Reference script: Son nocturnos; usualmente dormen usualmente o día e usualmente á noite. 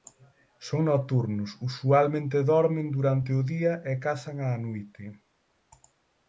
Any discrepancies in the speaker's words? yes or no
yes